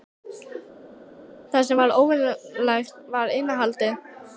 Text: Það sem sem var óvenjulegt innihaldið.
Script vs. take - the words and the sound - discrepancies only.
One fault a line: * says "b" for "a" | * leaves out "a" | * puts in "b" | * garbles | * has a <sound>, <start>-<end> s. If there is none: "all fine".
* leaves out "sem"
* puts in "var"